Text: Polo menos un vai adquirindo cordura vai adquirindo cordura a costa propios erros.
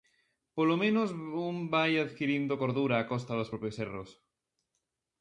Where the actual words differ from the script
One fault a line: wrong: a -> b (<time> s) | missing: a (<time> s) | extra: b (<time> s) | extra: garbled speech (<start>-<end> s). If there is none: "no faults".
missing: vai adquirindo cordura (3.0 s)
extra: dos (3.4 s)